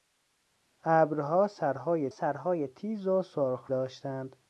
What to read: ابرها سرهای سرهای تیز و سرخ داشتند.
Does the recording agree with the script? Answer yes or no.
yes